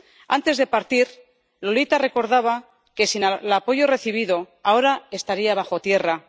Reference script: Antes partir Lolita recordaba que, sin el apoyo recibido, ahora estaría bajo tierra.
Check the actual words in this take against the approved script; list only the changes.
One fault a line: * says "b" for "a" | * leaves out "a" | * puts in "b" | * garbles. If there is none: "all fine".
* puts in "de"